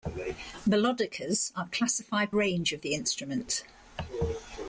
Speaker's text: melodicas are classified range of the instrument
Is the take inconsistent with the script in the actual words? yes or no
no